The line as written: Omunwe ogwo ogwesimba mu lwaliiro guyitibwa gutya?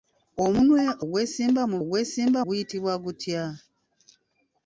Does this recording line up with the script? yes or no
no